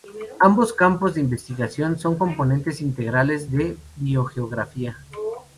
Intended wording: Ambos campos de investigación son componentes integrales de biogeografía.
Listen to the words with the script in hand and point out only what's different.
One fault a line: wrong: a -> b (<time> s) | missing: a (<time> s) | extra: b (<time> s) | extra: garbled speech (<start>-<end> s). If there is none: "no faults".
no faults